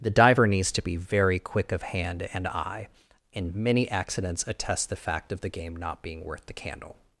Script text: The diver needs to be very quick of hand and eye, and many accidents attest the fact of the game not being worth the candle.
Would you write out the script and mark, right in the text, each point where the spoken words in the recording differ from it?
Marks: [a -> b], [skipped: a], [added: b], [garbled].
The diver needs to be very quick of hand and eye, and many accidents attest the fact of the game not being worth the candle.